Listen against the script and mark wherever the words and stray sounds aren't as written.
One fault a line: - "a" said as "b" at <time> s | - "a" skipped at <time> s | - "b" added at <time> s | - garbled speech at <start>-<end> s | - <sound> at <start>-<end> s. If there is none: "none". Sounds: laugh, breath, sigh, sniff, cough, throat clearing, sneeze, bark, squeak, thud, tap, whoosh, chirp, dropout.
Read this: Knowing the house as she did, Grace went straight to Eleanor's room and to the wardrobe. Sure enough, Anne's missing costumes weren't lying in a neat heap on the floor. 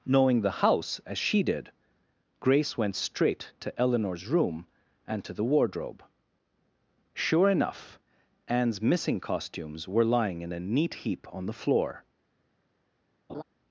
- "weren't" said as "were" at 9.9 s
- laugh at 13.3-13.4 s